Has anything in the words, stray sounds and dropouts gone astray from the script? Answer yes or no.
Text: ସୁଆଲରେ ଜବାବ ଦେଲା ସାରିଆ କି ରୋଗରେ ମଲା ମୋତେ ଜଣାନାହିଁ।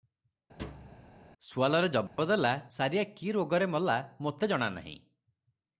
yes